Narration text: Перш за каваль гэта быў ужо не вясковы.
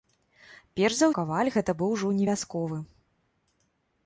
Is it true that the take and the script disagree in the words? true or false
false